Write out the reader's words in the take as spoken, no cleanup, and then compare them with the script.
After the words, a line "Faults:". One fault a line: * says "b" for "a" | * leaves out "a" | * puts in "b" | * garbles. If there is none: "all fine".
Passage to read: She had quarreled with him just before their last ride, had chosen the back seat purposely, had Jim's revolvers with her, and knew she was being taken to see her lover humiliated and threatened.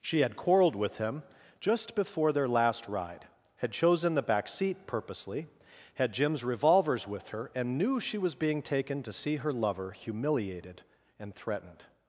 She had quarreled with him just before their last ride, had chosen the back seat purposely, had Jim's revolvers with her, and knew she was being taken to see her lover humiliated and threatened.
Faults:
all fine